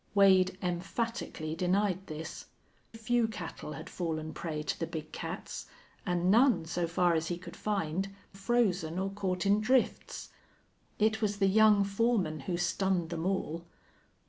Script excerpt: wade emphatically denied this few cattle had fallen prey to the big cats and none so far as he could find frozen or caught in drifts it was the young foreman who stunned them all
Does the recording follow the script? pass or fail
pass